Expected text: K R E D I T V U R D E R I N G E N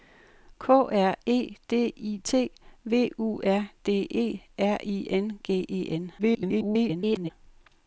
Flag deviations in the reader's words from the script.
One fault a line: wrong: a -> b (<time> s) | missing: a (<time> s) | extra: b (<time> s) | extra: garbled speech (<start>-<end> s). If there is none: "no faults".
extra: garbled speech (6.2-7.3 s)